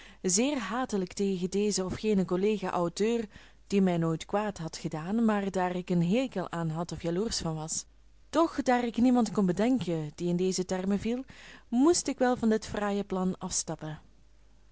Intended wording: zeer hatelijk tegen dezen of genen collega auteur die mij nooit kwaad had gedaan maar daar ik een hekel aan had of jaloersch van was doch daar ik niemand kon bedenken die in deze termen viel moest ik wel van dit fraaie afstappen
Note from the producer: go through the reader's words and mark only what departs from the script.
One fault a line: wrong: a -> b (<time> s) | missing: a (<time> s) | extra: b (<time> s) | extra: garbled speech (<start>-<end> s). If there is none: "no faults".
extra: plan (13.0 s)